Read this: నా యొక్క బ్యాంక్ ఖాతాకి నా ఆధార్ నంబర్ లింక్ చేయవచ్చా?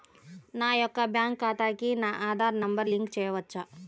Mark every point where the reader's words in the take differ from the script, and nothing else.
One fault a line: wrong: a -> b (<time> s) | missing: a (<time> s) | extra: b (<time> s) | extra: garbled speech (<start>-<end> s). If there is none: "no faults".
no faults